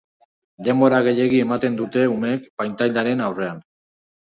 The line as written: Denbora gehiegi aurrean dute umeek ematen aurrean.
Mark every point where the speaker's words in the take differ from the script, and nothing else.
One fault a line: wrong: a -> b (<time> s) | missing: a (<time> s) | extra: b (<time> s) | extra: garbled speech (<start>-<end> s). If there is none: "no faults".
wrong: aurrean -> ematen (1.5 s)
wrong: ematen -> pantailaren (2.7 s)